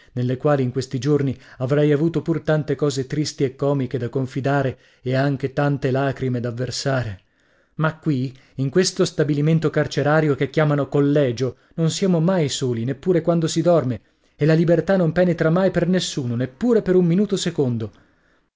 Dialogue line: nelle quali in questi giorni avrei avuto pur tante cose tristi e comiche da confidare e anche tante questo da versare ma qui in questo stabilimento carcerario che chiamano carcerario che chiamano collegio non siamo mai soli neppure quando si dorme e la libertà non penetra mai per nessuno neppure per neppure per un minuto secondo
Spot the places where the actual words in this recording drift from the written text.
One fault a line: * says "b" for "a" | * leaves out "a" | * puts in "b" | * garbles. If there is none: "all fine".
* says "lacrime" for "questo"
* leaves out "carcerario che chiamano"
* leaves out "neppure per"